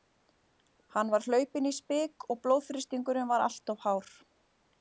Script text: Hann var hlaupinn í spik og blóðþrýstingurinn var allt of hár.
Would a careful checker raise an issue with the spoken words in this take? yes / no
no